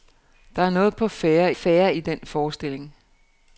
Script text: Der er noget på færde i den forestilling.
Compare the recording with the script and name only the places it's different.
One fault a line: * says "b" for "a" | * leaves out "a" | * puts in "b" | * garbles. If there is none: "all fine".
* puts in "færde"